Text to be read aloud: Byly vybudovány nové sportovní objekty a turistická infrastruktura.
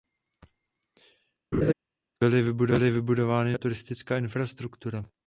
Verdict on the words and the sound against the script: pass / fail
fail